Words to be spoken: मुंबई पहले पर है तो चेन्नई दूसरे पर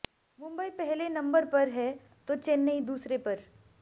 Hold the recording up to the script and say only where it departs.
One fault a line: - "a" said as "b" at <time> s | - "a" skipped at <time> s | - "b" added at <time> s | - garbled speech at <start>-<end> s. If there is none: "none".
- "नंबर" added at 1.1 s